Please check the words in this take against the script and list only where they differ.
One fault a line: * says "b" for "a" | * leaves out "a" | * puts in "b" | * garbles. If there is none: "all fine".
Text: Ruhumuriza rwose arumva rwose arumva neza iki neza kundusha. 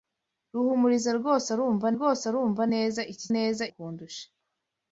all fine